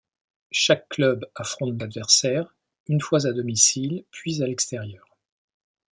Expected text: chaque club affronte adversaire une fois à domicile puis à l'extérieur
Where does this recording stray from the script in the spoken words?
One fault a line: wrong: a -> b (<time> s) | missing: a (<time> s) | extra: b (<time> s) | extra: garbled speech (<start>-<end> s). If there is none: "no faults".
no faults